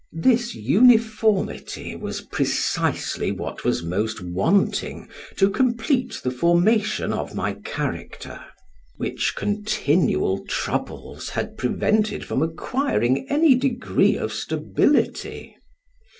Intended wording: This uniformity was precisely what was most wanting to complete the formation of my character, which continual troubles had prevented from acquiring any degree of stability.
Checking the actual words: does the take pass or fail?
pass